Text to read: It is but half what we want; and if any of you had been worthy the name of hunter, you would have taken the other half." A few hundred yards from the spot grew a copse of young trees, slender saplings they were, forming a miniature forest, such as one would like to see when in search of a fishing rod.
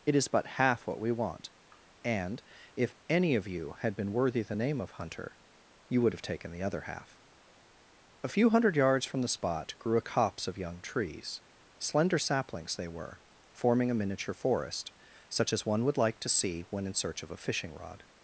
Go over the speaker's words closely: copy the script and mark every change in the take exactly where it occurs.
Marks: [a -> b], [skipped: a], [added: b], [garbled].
It is but half what we want; and if any of you had been worthy the name of hunter, you would have taken the other half." A few hundred yards from the spot grew a copse of young trees, slender saplings they were, forming a miniature forest, such as one would like to see when in search of a fishing rod.